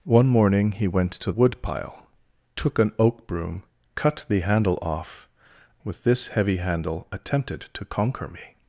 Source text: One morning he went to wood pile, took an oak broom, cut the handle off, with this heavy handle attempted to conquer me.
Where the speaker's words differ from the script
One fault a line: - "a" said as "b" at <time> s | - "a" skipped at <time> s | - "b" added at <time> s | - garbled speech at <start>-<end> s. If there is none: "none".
none